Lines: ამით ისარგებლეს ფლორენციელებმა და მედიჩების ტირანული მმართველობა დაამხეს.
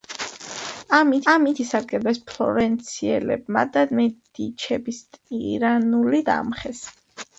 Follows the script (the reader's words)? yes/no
no